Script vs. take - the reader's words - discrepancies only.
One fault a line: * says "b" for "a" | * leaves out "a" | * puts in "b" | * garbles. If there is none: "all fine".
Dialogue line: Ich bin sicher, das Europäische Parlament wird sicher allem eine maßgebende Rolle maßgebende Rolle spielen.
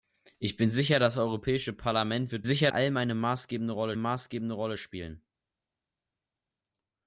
all fine